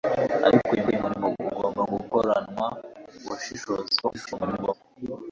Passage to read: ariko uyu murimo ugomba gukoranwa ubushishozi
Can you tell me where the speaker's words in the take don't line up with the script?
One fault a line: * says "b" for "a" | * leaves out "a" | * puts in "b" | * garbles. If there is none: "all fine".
* puts in "uyu"
* garbles